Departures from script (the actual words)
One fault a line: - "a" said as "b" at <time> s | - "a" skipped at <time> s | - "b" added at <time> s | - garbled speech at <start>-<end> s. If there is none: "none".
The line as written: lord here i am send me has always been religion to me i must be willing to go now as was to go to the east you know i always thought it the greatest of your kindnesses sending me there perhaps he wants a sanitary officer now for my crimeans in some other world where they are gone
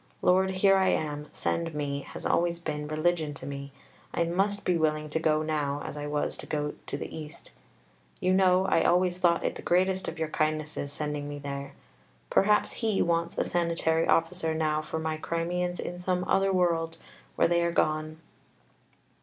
- "i" added at 5.9 s